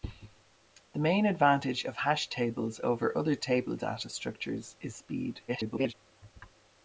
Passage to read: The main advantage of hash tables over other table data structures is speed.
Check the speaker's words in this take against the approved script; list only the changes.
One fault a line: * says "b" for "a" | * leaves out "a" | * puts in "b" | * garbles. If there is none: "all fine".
* garbles